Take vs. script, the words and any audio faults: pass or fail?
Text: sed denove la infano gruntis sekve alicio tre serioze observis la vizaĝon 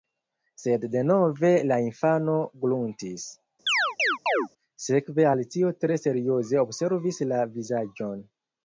fail